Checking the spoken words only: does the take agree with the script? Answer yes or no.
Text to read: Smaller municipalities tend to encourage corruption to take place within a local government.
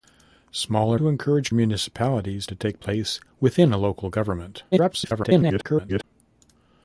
no